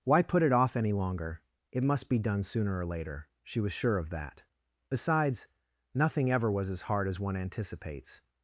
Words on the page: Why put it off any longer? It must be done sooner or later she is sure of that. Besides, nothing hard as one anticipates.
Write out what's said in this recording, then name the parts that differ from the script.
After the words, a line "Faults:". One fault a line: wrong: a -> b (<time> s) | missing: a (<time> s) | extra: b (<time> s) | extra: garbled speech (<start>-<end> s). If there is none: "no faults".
Why put it off any longer? It must be done sooner or later she was sure of that. Besides, nothing ever was as hard as one anticipates.
Faults:
wrong: is -> was (3.6 s)
extra: ever was as (6.3 s)